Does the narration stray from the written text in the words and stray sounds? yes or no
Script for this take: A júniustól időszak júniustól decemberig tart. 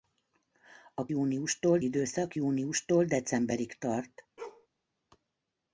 yes